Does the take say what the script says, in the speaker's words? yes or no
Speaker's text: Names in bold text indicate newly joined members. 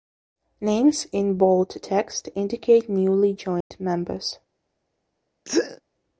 yes